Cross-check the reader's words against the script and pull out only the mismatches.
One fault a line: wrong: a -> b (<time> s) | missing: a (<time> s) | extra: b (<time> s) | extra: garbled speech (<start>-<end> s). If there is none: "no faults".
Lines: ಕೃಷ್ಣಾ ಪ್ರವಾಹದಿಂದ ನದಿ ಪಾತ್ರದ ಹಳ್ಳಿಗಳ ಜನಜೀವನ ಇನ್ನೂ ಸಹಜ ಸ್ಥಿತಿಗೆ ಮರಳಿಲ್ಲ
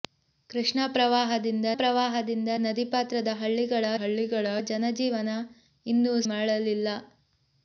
extra: ಪ್ರವಾಹದಿಂದ (1.7 s)
extra: ಹಳ್ಳಿಗಳ (4.0 s)
missing: ಸಹಜ ಸ್ಥಿತಿಗೆ (6.1 s)